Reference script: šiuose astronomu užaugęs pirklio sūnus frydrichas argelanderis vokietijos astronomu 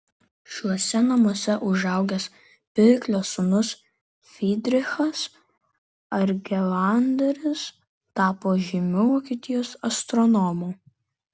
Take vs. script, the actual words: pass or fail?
fail